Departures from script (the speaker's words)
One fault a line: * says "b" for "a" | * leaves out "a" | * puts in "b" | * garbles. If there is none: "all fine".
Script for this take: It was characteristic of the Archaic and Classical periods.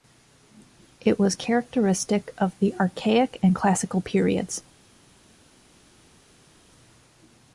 all fine